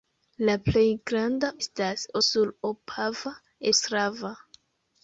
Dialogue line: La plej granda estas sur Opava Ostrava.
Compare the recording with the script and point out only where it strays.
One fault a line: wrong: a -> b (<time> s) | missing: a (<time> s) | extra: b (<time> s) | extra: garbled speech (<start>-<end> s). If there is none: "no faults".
no faults